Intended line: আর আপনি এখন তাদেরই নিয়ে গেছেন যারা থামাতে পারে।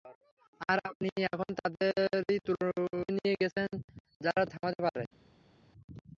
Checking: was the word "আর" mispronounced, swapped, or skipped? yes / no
no